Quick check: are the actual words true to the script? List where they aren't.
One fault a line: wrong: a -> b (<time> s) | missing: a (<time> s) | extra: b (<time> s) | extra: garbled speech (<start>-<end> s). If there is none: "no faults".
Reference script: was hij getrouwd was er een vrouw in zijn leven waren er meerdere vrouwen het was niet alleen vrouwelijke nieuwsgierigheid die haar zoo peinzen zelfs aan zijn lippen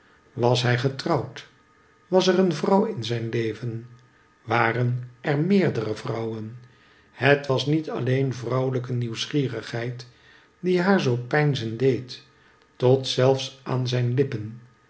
extra: deed tot (11.8 s)